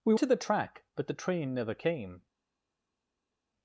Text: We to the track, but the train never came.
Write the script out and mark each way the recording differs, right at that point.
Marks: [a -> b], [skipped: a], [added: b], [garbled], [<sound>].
We to the track, but the train never came.